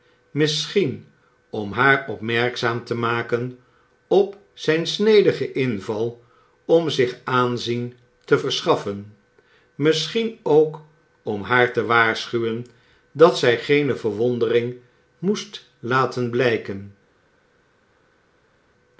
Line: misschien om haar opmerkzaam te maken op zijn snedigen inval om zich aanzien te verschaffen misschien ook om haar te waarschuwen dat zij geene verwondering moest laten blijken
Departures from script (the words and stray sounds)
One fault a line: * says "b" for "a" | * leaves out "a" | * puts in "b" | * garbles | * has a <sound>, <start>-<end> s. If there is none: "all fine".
all fine